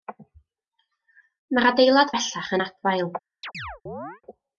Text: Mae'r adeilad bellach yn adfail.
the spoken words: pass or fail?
pass